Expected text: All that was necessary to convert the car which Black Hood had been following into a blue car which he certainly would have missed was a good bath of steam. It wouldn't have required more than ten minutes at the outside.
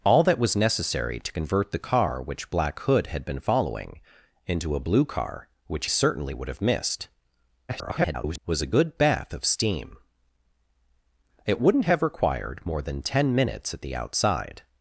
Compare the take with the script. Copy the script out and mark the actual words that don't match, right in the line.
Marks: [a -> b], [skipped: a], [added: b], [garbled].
All that was necessary to convert the car which Black Hood had been following into a blue car which [skipped: he] certainly would have missed [garbled] was a good bath of steam. It wouldn't have required more than ten minutes at the outside.